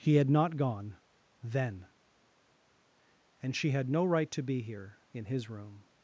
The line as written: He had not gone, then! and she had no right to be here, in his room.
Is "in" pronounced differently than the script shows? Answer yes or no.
no